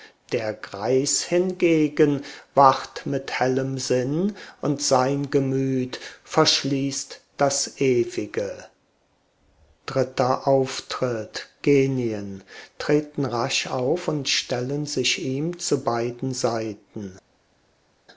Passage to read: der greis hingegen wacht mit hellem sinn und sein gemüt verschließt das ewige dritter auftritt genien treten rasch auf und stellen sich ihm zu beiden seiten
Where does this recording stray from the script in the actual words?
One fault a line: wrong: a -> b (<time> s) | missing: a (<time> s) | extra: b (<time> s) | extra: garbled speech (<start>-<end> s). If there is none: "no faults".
no faults